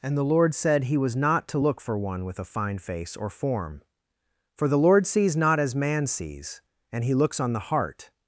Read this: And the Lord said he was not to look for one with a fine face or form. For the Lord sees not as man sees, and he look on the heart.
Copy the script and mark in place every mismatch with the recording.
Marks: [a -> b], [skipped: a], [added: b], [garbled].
And the Lord said he was not to look for one with a fine face or form. For the Lord sees not as man sees, and he [look -> looks] on the heart.